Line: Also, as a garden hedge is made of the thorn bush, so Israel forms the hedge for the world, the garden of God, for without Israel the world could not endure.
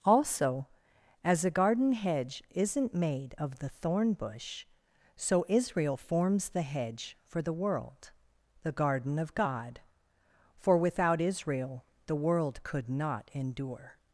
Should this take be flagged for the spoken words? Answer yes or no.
yes